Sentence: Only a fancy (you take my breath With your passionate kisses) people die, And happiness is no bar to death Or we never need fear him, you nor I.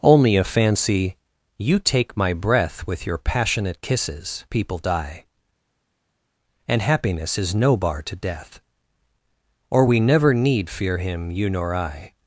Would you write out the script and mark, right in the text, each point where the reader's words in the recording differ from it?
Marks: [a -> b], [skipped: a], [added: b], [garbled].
Only a fancy (you take my breath With your passionate kisses) people die, And happiness is no bar to death Or we never need fear him, you nor I.